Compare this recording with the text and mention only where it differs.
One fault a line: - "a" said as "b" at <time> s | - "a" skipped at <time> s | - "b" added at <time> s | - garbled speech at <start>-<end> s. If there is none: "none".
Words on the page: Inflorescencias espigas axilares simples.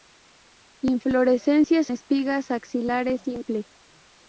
none